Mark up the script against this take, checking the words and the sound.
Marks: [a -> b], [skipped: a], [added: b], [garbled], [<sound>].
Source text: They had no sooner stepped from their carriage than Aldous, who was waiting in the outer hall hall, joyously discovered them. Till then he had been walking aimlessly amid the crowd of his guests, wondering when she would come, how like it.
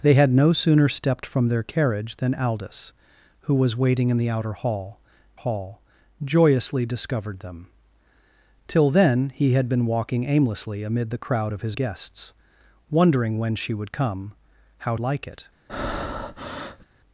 They had no sooner stepped from their carriage than Aldous, who was waiting in the outer hall hall, joyously discovered them. Till then he had been walking aimlessly amid the crowd of his guests, wondering when she would come, how like it. [breath]